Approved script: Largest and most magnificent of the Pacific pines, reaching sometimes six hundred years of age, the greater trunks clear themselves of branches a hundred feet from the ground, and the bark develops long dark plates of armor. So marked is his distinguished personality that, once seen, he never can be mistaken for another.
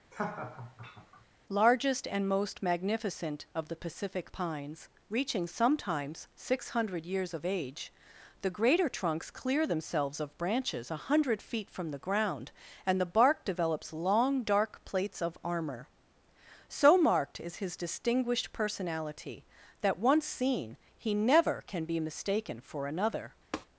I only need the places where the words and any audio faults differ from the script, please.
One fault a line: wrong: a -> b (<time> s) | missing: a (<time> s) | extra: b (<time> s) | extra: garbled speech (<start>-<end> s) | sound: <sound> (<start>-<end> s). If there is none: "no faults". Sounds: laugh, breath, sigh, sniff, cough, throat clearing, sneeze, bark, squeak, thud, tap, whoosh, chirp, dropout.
sound: laugh (0.1-1.3 s)
sound: tap (23.5-23.7 s)